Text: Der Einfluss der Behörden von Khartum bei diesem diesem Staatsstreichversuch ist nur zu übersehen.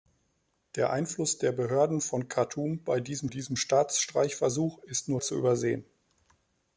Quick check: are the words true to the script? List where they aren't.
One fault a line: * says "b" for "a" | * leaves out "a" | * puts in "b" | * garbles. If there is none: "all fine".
all fine